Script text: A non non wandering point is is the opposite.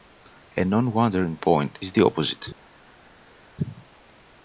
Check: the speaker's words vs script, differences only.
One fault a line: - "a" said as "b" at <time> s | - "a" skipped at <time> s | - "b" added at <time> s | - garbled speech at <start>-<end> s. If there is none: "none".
- "non" skipped at 0.9 s
- "is" skipped at 1.9 s